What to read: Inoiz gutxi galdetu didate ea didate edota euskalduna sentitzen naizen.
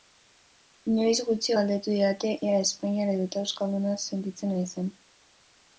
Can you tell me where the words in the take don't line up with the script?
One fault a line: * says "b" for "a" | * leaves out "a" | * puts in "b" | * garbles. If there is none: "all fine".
* says "espainiar" for "didate"